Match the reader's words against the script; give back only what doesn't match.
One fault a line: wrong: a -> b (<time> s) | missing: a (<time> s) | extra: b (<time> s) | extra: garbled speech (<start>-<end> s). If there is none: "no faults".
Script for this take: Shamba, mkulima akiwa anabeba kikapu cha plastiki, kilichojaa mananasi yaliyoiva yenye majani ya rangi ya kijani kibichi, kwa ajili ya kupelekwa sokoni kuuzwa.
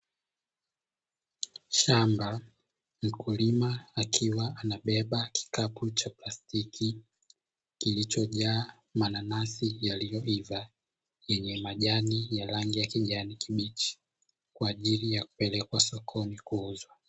no faults